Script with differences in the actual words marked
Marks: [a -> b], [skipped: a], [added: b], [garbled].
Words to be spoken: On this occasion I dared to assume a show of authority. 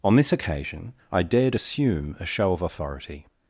On this occasion I dared [skipped: to] assume a show of authority.